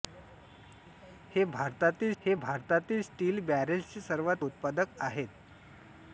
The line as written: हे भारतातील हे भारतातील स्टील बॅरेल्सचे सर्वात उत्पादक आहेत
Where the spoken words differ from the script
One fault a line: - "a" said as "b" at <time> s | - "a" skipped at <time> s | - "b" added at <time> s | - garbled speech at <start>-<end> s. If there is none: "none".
none